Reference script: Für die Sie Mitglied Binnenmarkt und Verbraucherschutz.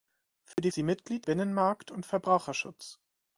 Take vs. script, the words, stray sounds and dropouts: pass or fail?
fail